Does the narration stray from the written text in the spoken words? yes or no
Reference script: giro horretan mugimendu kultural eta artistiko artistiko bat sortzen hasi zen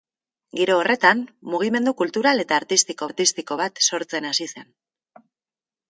no